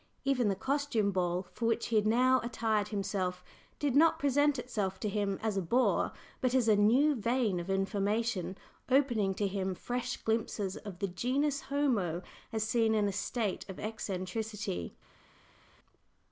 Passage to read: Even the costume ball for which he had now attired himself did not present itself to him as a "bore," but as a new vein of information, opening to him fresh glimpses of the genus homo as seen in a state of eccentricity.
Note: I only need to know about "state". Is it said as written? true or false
true